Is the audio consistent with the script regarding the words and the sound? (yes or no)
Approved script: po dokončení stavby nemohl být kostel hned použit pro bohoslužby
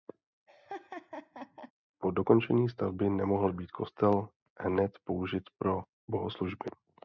no